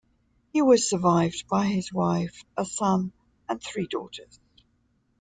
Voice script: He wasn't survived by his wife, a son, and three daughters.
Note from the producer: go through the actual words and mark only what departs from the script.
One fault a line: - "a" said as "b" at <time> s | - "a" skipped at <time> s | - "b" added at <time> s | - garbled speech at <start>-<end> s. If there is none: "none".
- "wasn't" said as "was" at 0.6 s